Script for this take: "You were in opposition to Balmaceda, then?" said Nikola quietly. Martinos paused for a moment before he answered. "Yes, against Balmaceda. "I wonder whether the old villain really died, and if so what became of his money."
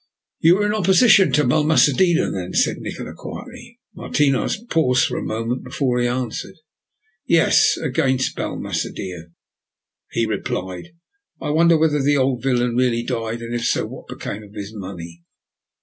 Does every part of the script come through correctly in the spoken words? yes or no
no